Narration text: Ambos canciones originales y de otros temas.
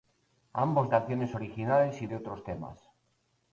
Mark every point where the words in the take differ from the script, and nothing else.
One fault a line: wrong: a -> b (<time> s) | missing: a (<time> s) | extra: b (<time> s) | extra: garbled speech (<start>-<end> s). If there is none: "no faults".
no faults